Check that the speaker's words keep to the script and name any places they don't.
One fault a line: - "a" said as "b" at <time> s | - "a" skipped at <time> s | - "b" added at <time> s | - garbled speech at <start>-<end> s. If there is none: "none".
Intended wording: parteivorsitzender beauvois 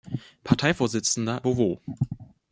none